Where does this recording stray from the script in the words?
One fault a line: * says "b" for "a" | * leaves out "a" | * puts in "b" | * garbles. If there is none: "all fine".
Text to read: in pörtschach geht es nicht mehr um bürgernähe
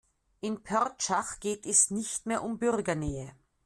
all fine